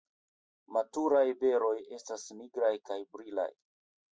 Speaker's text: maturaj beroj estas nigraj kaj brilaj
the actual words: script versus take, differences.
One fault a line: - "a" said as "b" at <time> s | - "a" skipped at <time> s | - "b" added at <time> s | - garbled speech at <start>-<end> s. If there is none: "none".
none